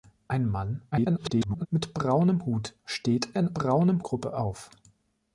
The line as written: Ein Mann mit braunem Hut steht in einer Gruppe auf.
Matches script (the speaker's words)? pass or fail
fail